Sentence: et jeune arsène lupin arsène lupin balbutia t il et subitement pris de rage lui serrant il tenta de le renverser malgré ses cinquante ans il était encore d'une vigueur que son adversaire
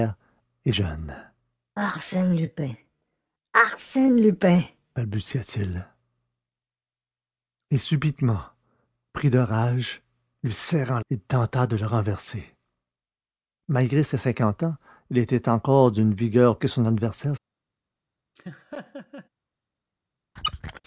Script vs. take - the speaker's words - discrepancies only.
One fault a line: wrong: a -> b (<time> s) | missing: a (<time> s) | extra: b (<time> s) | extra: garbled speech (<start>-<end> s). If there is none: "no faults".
no faults